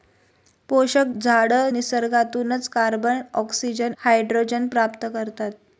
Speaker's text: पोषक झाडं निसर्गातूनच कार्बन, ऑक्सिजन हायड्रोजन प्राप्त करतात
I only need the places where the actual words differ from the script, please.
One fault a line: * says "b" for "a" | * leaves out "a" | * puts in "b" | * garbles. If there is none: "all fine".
all fine